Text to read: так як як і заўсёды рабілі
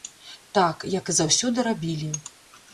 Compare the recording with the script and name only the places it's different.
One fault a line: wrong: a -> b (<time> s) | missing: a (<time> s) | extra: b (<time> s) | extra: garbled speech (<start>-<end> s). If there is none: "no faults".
missing: як (1.1 s)